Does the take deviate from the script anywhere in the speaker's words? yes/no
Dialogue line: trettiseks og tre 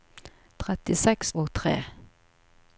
no